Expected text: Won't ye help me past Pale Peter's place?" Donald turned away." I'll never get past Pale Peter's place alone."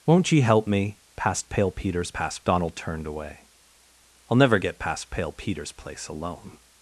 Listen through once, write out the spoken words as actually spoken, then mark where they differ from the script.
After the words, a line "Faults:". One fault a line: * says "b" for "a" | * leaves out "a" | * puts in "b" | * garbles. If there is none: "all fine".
Won't ye help me past Pale Peter's past?" Donald turned away." I'll never get past Pale Peter's place alone."
Faults:
* says "past" for "place"